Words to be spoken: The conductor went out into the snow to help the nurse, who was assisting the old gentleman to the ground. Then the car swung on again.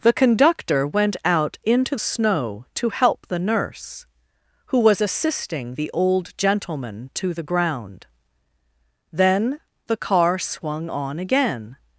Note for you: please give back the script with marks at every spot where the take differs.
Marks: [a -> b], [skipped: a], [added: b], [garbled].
The conductor went out into [skipped: the] snow to help the nurse, who was assisting the old gentleman to the ground. Then the car swung on again.